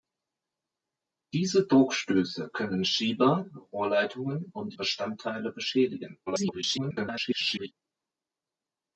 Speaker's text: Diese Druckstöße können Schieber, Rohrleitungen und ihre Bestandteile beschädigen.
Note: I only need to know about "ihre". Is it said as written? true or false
false